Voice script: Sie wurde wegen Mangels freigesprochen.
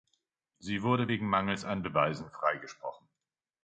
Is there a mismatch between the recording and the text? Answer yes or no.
yes